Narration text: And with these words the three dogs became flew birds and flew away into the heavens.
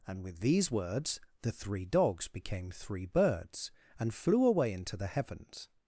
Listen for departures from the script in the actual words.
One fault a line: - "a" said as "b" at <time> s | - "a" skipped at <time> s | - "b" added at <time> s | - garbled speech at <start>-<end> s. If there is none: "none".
- "flew" said as "three" at 2.7 s